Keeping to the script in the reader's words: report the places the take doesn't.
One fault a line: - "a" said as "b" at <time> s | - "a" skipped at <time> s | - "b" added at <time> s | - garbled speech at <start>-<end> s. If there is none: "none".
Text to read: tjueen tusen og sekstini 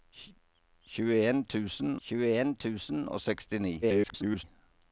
- "tjueen tusen" added at 2.1 s
- garbled speech at 3.8-4.4 s